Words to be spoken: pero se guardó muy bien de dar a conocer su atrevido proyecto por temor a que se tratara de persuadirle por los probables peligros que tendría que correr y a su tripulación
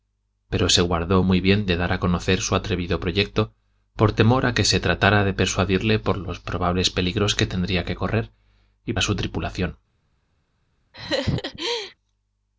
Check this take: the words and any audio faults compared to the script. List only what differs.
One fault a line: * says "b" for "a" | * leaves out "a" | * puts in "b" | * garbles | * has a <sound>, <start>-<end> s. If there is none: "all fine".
* has a laugh, 10.9-11.9 s